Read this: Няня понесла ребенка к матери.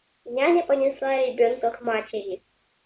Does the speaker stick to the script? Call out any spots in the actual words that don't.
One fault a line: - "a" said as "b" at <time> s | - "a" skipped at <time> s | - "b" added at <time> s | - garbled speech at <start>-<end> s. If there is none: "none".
none